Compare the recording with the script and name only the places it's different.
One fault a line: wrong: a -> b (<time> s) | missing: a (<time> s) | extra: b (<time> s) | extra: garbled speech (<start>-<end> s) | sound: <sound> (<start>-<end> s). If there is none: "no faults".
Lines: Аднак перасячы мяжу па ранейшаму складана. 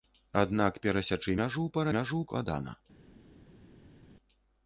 wrong: ранейшаму -> мяжу (2.0 s)